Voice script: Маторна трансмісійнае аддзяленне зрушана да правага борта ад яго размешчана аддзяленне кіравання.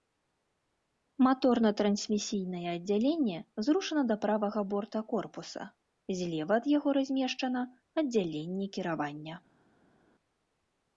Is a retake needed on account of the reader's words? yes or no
yes